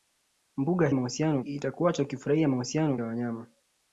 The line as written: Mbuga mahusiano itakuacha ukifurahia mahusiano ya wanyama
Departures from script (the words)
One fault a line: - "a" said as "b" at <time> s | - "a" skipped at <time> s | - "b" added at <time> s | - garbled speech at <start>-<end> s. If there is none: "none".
none